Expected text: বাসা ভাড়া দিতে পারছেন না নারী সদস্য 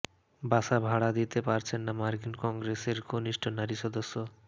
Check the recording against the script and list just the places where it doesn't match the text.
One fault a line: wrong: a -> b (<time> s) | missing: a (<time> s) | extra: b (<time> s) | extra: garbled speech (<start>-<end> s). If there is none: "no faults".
extra: মার্কিন কংগ্রেসের কনিষ্ঠ (2.0 s)